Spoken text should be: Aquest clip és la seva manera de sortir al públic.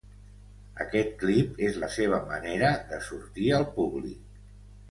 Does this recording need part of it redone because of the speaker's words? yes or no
no